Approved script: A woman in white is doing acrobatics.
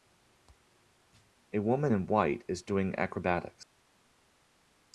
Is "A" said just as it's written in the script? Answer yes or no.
yes